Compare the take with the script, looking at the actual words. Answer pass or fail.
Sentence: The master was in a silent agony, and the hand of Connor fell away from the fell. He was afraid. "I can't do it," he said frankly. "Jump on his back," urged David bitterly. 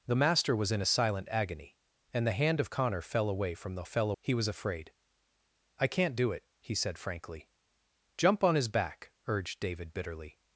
pass